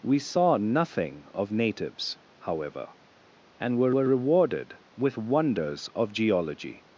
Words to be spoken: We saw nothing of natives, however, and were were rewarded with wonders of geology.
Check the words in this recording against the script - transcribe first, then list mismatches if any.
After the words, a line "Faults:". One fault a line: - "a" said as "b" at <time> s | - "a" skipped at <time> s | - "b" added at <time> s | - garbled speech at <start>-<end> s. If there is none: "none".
We saw nothing of natives, however, and were were rewarded with wonders of geology.
Faults:
none